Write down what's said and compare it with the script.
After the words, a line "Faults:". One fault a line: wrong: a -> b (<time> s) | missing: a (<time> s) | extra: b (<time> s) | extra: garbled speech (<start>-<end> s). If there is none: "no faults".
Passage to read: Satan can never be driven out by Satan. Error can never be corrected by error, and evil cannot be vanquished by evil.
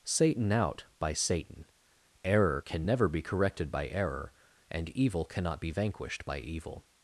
Satan out by Satan. Error can never be corrected by error, and evil cannot be vanquished by evil.
Faults:
missing: can never be driven (0.5 s)